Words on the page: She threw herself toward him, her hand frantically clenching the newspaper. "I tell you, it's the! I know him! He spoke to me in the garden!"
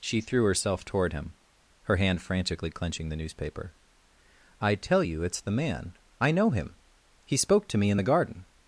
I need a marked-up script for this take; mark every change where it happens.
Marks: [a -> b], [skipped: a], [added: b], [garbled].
She threw herself toward him, her hand frantically clenching the newspaper. "I tell you, it's the! [added: man] I know him! He spoke to me in the garden!"